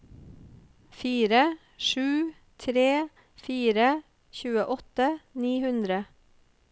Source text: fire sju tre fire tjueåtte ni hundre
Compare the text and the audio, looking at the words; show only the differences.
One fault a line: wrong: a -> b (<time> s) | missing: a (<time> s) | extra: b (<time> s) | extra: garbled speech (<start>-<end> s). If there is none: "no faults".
no faults